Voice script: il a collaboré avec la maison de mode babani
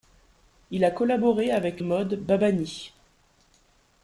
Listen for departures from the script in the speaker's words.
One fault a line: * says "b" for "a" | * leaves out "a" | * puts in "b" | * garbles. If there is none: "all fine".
* leaves out "la maison de"